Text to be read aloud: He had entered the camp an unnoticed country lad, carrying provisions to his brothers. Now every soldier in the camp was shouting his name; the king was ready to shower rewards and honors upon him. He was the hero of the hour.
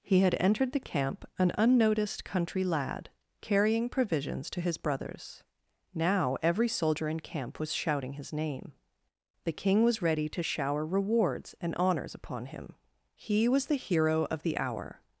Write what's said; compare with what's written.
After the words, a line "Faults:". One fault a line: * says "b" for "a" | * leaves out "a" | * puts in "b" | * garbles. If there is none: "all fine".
He had entered the camp an unnoticed country lad, carrying provisions to his brothers. Now every soldier in camp was shouting his name; the king was ready to shower rewards and honors upon him. He was the hero of the hour.
Faults:
* leaves out "the"